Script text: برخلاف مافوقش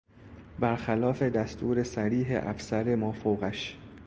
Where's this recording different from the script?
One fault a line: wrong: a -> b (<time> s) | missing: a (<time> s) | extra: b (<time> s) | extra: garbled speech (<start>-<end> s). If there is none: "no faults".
extra: دستور صریح افسر (1.2 s)